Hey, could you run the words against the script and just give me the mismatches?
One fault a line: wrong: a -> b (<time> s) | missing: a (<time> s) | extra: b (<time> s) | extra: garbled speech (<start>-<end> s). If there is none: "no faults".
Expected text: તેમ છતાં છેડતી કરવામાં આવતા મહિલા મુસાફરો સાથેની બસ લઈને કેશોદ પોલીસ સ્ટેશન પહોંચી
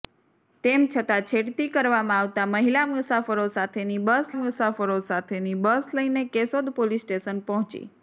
extra: મુસાફરો સાથેની બસ (4.3 s)